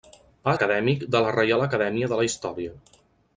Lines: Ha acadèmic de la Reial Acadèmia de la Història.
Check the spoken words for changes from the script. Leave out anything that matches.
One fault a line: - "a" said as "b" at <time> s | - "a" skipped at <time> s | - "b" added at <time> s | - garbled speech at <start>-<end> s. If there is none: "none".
none